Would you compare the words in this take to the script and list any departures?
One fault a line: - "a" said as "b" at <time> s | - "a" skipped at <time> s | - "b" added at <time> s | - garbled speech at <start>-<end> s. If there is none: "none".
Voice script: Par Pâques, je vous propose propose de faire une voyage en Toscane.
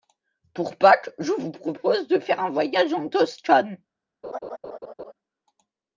- "Par" said as "Pour" at 0.6 s
- "propose" skipped at 2.1 s
- "une" said as "un" at 2.4 s